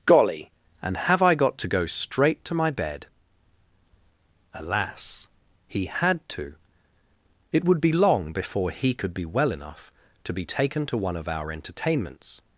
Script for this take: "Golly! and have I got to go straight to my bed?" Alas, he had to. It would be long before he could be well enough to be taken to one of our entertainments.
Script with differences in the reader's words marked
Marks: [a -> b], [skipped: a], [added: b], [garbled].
"Golly! and have I got to go straight to my bed?" Alas, he had to. It would be long before he could be well enough to be taken to one of our entertainments.